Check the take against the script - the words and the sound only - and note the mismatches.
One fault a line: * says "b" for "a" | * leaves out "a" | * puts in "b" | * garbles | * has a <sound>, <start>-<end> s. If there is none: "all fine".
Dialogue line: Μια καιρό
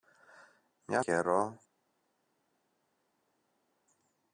all fine